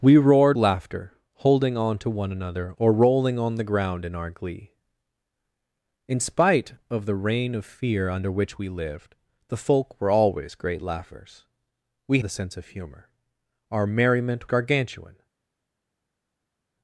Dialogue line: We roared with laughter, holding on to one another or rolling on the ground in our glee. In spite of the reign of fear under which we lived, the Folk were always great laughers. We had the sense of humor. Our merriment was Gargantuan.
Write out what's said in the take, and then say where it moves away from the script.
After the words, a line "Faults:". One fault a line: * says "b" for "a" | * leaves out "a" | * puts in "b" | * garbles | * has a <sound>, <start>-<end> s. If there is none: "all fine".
We roared laughter, holding on to one another or rolling on the ground in our glee. In spite of the reign of fear under which we lived, the Folk were always great laughers. We the sense of humor. Our merriment Gargantuan.
Faults:
* leaves out "with"
* leaves out "had"
* leaves out "was"